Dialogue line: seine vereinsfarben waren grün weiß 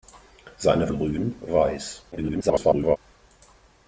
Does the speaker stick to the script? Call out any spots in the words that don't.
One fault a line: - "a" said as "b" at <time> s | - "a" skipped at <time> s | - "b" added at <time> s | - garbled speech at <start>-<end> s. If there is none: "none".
- "vereinsfarben waren" skipped at 0.9 s
- garbled speech at 2.1-3.0 s